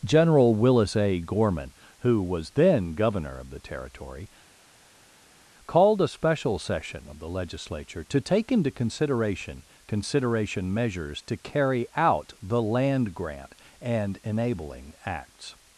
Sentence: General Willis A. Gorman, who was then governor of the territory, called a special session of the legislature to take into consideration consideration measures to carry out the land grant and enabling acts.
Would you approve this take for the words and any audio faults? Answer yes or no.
yes